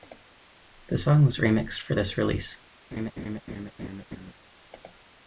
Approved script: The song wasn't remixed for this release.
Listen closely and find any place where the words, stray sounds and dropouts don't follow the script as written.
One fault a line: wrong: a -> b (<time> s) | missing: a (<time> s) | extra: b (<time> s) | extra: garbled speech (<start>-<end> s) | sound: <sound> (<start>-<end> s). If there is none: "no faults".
wrong: wasn't -> was (1.2 s)
sound: laugh (2.9-4.3 s)